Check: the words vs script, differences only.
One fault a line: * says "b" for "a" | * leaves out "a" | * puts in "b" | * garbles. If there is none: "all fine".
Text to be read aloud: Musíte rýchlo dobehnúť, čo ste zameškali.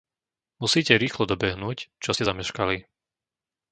all fine